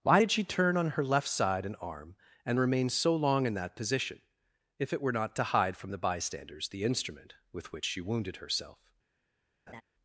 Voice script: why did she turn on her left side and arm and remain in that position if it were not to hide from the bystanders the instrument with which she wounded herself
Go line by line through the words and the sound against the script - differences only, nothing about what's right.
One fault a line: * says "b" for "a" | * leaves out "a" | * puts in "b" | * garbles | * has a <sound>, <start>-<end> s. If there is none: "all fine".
* puts in "so long"
* has a laugh, 9.7-9.8 s